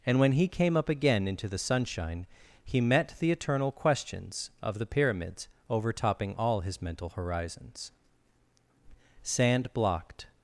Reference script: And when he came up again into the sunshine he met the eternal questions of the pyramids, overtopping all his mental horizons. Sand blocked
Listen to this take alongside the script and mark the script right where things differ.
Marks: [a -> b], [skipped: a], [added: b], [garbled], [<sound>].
And when he came up again into the sunshine he met the eternal questions of the pyramids, overtopping all his mental horizons. Sand blocked